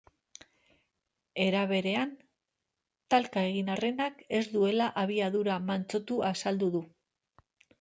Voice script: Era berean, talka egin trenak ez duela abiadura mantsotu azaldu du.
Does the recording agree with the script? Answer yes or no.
yes